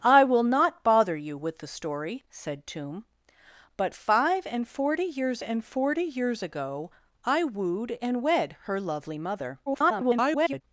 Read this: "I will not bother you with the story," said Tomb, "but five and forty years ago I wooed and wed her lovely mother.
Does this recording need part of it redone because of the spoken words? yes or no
yes